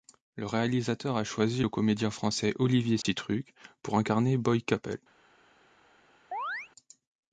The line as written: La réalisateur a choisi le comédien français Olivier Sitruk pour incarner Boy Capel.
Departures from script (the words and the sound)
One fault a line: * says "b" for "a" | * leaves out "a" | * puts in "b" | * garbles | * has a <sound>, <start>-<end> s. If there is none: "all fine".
* says "Le" for "La"
* has a dropout, 3.0-3.0 s
* has a chirp, 6.3-6.7 s